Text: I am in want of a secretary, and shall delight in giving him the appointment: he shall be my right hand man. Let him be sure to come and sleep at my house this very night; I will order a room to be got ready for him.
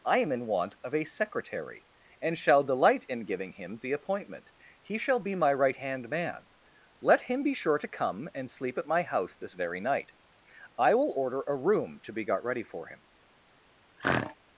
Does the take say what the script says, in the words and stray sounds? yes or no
no